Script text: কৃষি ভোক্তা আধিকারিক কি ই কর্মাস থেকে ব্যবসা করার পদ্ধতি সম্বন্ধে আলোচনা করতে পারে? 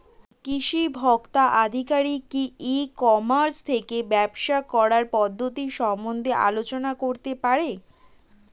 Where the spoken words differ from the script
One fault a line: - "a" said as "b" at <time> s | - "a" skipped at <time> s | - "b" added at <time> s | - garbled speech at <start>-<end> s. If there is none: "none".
none